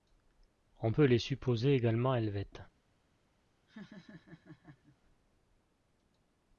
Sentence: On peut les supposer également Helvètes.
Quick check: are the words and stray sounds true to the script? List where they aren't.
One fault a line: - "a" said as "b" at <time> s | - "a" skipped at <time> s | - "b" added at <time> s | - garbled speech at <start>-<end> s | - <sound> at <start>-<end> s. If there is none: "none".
- laugh at 3.7-5.0 s